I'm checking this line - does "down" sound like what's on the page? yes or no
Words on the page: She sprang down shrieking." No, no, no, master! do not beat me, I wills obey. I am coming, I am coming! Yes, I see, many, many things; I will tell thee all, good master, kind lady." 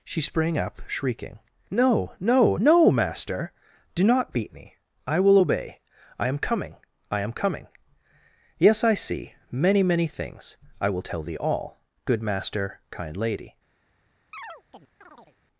no